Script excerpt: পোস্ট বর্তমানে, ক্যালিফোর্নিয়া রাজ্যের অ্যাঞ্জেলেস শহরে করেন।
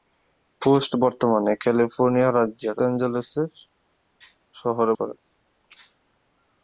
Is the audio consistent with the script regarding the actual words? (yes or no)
yes